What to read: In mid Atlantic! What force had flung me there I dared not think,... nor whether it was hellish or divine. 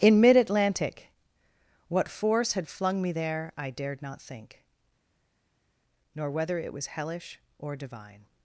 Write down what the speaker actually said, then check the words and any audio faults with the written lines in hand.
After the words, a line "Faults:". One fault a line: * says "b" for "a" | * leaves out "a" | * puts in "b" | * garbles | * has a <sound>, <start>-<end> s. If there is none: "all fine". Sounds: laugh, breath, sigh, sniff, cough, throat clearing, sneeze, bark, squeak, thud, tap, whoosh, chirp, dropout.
In mid Atlantic! What force had flung me there I dared not think,... nor whether it was hellish or divine.
Faults:
all fine